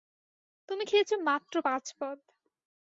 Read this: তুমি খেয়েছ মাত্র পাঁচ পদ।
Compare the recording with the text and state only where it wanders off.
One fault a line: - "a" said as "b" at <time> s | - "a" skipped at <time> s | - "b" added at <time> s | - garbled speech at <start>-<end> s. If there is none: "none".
none